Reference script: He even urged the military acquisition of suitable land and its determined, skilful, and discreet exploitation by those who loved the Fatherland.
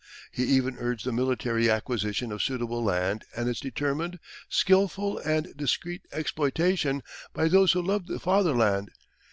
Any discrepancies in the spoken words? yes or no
no